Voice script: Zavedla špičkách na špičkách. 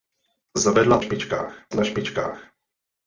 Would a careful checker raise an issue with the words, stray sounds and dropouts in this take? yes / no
no